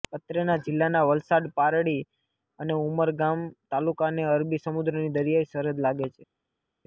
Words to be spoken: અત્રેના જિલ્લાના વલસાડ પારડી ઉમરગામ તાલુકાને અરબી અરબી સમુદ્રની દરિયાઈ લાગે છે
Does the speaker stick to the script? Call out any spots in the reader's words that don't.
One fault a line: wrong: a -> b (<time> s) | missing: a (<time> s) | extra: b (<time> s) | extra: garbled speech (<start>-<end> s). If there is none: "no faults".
extra: અને (2.6 s)
missing: અરબી (4.6 s)
extra: સરહદ (5.5 s)